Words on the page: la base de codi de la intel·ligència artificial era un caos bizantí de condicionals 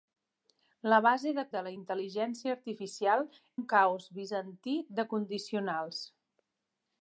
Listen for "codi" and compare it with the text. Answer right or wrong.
wrong